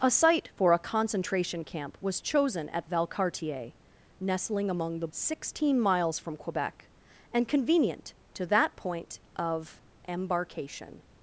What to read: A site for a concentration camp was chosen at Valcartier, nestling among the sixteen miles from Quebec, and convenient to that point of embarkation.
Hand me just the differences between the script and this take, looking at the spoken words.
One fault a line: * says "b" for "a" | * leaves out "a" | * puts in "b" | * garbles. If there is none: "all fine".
all fine